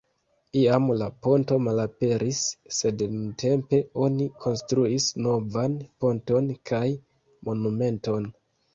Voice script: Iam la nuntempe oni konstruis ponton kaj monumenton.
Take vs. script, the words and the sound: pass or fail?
fail